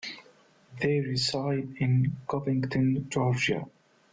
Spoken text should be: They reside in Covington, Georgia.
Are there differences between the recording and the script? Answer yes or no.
no